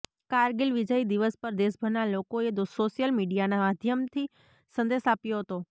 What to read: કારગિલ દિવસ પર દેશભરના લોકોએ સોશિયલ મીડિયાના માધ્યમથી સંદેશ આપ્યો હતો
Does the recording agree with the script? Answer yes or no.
no